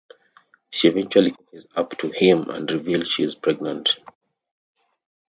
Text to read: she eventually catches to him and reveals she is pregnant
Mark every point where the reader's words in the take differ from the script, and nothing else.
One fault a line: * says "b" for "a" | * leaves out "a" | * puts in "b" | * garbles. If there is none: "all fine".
* puts in "up"